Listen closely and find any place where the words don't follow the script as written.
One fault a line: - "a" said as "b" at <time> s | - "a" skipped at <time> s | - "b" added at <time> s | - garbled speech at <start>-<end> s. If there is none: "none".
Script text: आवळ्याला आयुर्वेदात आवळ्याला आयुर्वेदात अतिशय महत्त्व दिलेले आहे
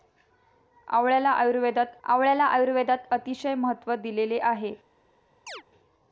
none